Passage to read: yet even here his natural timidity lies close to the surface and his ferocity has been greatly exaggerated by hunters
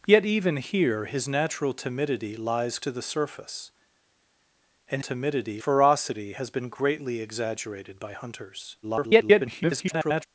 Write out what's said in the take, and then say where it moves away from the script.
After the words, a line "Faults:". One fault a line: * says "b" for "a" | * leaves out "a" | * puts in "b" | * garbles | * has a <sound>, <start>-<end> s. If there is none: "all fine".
yet even here his natural timidity lies to the surface and timidity ferocity has been greatly exaggerated by hunters [garbled]
Faults:
* leaves out "close"
* says "timidity" for "his"
* garbles